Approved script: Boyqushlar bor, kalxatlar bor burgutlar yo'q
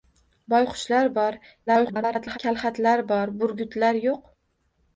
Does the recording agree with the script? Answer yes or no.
no